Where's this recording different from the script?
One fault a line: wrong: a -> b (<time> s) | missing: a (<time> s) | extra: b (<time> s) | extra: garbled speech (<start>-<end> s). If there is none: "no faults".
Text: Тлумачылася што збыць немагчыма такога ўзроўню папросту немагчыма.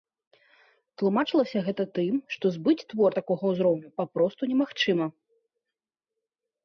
extra: гэта тым (1.7 s)
wrong: немагчыма -> твор (2.9 s)